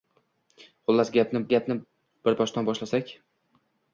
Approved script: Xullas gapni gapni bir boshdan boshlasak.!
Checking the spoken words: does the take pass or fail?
pass